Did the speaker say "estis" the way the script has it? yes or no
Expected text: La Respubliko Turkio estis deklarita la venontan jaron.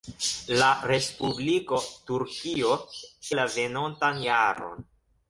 no